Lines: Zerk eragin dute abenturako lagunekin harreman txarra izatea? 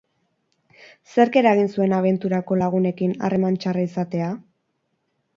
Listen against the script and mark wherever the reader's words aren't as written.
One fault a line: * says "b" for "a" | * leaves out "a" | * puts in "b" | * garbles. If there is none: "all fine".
* says "zuen" for "dute"